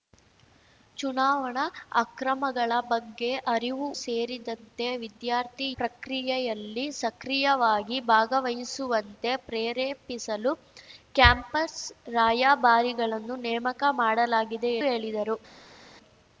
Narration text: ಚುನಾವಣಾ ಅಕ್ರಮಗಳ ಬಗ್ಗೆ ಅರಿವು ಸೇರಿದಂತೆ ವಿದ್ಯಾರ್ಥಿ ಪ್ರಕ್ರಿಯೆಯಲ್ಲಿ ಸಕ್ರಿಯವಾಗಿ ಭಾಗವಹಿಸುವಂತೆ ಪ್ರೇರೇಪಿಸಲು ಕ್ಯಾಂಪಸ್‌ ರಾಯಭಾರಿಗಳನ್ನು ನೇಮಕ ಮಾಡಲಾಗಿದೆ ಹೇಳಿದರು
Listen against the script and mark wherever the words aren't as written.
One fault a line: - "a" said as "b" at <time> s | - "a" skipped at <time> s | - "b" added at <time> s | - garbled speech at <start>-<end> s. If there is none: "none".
none